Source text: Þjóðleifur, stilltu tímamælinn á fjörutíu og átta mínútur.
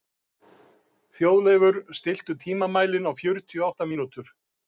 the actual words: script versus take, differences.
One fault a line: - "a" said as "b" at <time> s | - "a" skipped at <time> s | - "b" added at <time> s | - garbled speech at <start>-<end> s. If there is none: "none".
none